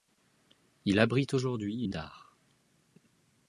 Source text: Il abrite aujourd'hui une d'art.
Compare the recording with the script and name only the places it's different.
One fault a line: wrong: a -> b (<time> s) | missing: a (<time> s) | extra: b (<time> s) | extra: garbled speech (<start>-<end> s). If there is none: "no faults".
no faults